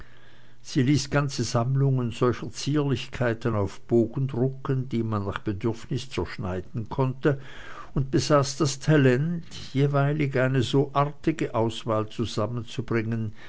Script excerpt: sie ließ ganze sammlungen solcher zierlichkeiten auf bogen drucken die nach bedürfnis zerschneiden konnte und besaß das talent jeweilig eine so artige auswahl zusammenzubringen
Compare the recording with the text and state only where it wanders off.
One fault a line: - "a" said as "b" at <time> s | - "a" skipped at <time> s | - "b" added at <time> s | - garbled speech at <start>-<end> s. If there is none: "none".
- "man" added at 5.0 s